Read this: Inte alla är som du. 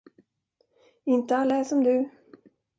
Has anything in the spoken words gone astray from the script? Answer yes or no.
no